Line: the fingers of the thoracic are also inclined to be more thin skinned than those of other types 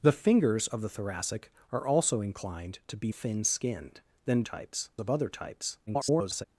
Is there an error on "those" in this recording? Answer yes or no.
yes